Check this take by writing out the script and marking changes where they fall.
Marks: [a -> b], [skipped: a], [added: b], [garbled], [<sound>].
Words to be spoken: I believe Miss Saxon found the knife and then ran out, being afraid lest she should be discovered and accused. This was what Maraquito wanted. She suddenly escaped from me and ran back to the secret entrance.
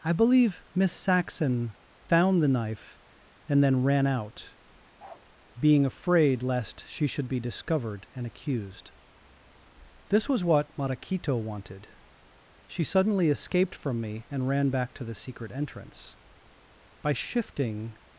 I believe Miss Saxon found the knife and then ran out, [bark] being afraid lest she should be discovered and accused. This was what Maraquito wanted. She suddenly escaped from me and ran back to the secret entrance. [added: By shifting]